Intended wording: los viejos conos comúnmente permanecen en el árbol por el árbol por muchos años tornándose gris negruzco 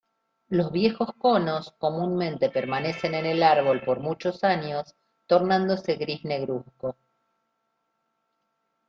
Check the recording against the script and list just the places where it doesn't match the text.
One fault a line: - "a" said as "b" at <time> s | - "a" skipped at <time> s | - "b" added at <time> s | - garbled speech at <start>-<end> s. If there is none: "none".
- "el árbol por" skipped at 4.0 s